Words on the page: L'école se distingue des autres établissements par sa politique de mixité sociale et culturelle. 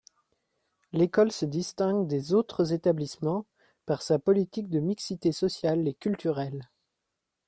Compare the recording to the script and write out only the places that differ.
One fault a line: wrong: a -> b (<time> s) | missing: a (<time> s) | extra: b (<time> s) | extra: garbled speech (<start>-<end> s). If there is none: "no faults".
no faults